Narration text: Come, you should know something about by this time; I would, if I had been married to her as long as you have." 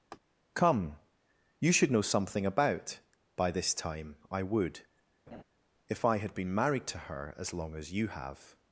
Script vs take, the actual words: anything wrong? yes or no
no